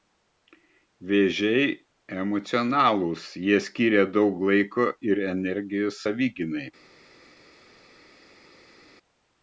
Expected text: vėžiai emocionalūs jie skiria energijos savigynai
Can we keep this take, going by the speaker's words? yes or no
no